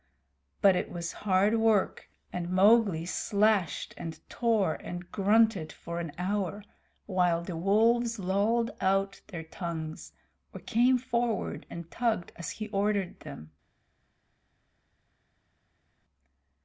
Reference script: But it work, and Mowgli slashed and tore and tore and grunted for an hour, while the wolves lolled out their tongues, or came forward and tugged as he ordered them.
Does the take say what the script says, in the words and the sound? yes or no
no